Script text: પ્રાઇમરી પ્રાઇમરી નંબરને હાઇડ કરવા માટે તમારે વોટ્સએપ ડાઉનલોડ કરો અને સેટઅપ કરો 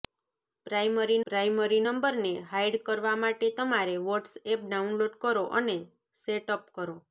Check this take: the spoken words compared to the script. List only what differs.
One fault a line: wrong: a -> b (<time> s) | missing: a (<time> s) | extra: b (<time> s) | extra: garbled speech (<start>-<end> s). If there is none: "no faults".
no faults